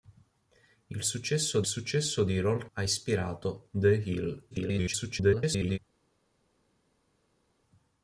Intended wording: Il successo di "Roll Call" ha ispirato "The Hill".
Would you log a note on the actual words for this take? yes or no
yes